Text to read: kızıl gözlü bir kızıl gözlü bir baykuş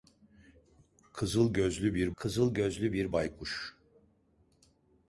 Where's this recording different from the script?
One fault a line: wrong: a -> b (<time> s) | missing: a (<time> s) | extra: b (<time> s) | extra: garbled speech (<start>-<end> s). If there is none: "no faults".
no faults